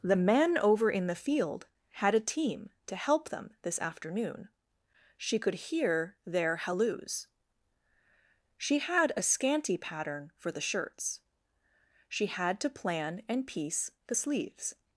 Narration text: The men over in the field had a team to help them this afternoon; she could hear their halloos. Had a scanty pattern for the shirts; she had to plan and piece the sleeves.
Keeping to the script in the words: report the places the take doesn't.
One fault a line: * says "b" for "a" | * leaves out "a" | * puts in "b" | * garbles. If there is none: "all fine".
* puts in "She"